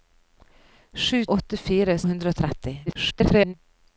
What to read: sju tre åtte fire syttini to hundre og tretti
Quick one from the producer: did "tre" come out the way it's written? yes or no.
no